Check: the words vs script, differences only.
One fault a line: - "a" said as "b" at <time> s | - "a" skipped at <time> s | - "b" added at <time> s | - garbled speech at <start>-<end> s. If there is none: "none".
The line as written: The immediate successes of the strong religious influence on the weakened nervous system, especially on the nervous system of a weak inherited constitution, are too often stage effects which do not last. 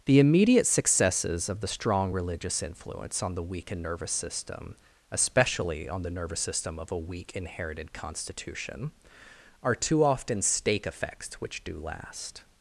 - "stage" said as "stake" at 10.4 s
- "not" skipped at 11.8 s